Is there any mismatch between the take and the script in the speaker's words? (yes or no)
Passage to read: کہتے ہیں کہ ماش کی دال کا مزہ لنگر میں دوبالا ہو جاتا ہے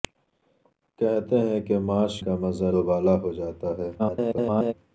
yes